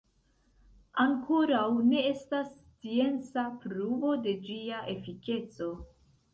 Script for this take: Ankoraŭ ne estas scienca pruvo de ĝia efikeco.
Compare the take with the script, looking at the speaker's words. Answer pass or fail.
pass